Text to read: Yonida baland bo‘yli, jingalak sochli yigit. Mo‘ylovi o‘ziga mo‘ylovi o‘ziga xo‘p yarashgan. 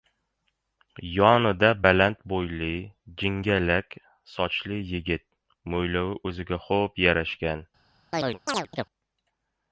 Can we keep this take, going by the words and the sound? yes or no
no